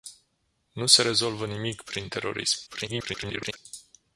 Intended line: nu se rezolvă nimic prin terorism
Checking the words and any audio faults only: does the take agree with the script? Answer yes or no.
no